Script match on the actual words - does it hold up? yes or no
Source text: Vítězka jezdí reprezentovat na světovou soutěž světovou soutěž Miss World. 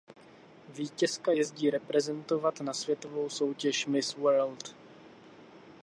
no